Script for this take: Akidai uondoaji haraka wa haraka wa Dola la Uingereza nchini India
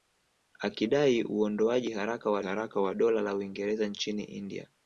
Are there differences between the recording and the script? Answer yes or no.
no